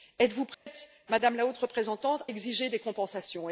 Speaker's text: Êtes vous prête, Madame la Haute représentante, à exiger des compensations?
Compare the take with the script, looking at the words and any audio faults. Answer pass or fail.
fail